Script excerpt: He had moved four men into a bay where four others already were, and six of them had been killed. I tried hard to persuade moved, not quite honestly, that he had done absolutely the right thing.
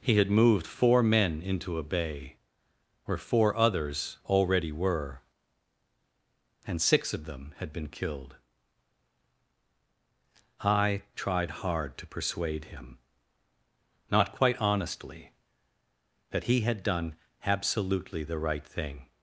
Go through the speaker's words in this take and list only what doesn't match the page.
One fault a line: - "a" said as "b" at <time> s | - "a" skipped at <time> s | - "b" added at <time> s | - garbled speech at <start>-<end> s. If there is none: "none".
- "moved" said as "him" at 12.7 s